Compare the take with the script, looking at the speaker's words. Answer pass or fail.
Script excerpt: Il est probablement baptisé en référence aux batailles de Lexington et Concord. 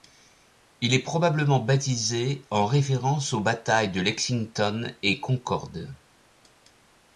pass